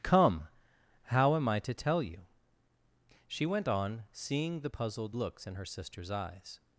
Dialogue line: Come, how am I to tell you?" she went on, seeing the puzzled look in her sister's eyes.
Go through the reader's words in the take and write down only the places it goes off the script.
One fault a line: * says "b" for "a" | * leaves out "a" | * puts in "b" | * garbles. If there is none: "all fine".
* says "looks" for "look"